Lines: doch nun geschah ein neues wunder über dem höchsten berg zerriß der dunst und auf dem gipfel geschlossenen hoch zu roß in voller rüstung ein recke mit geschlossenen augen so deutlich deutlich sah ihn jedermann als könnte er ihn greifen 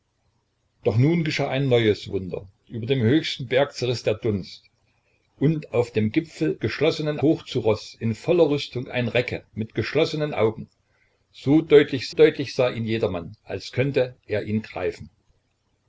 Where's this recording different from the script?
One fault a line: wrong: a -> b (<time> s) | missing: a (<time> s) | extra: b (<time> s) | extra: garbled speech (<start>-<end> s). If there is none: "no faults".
no faults